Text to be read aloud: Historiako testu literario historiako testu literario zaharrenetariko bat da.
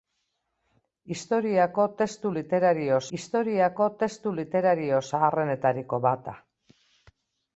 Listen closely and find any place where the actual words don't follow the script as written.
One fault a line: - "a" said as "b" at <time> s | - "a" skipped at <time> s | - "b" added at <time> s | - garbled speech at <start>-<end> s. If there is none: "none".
none